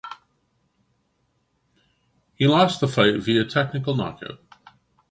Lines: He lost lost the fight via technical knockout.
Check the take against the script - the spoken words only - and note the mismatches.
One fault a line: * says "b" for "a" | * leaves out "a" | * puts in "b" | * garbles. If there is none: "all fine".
* leaves out "lost"